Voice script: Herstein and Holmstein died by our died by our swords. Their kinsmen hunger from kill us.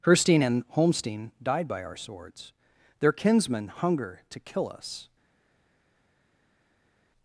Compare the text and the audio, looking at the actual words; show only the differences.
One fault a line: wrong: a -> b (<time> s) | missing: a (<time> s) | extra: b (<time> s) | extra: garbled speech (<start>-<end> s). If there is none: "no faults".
missing: died by our (2.0 s)
wrong: from -> to (4.3 s)